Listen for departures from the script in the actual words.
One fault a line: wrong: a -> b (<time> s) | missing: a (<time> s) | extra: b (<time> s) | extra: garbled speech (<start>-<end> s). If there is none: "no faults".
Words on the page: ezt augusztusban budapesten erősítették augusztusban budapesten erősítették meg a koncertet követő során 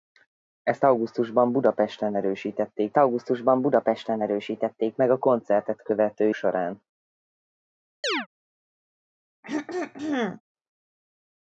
no faults